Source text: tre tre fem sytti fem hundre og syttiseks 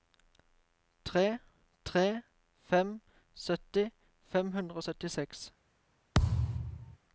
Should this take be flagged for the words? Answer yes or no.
no